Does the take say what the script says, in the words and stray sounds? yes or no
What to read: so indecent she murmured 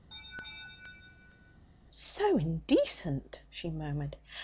no